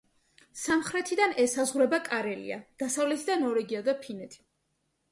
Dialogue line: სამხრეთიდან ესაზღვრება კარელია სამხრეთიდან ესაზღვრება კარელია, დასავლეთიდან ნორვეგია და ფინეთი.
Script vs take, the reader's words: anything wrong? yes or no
yes